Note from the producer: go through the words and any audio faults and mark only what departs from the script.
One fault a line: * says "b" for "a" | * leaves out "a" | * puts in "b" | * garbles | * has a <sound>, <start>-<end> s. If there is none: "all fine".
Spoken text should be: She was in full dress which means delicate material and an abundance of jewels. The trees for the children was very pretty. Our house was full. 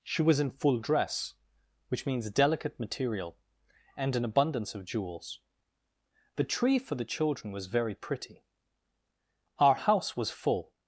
* says "tree" for "trees"